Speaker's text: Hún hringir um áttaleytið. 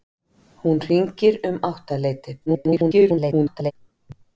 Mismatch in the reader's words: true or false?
true